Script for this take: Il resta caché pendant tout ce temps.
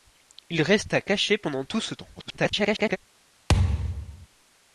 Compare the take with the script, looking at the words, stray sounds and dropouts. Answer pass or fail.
fail